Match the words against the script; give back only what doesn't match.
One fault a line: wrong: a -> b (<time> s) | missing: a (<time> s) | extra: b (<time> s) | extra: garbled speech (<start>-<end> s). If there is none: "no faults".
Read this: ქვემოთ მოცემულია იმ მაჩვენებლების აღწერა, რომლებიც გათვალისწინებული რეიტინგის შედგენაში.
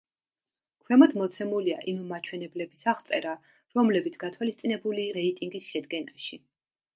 no faults